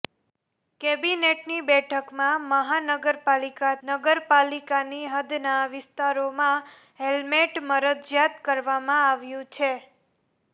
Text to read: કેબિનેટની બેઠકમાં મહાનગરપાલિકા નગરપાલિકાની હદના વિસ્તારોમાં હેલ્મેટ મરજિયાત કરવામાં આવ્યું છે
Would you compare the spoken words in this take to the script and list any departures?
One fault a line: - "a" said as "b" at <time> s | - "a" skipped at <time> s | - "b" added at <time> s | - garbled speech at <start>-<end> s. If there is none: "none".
none